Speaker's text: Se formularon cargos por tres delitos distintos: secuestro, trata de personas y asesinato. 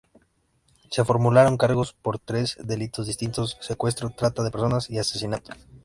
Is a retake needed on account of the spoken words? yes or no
no